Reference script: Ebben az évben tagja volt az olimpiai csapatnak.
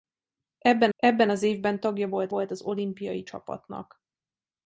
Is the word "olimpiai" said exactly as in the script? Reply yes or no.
yes